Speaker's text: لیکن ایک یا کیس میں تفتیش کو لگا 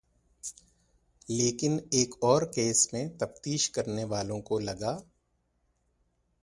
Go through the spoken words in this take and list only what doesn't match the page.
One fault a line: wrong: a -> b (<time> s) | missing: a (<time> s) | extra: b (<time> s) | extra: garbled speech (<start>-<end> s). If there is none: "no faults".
wrong: یا -> اور (2.2 s)
extra: کرنے والوں (3.7 s)